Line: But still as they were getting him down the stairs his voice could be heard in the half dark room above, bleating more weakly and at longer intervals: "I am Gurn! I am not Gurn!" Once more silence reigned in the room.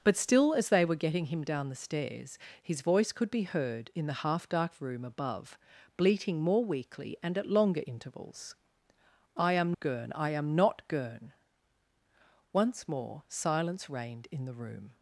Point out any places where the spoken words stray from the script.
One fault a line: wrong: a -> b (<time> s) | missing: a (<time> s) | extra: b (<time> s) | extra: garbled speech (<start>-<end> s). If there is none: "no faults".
no faults